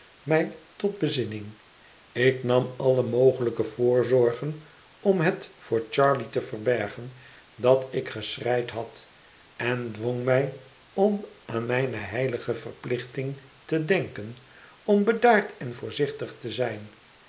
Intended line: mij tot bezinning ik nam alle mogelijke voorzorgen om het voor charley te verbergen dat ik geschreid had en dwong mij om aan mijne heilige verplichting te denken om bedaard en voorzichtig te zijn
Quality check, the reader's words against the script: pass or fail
pass